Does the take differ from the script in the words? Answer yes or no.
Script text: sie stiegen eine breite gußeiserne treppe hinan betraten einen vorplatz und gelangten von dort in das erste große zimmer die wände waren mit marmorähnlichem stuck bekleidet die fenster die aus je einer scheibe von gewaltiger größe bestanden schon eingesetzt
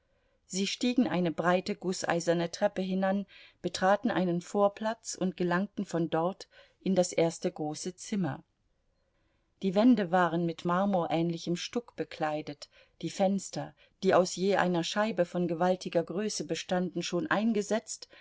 no